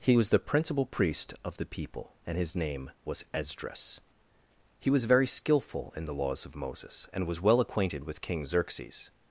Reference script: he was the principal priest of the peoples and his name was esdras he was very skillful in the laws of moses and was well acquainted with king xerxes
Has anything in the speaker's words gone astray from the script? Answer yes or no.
yes